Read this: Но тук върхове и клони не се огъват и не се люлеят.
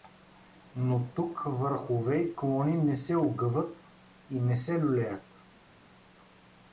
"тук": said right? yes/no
yes